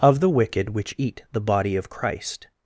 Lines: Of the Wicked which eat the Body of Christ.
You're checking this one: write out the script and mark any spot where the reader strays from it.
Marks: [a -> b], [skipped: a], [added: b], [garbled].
Of the Wicked which eat the Body of Christ.